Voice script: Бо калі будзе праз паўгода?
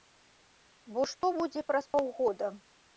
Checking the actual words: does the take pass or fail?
fail